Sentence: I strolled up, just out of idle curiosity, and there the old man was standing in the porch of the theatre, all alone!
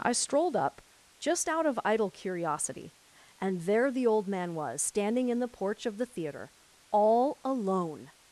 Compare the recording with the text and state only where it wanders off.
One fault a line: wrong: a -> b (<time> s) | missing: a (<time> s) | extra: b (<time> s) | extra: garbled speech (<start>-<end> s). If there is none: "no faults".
no faults